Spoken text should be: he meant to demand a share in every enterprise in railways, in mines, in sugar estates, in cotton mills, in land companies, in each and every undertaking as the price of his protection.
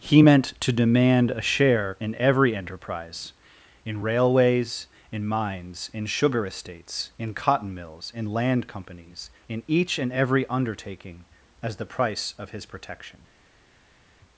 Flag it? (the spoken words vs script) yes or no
no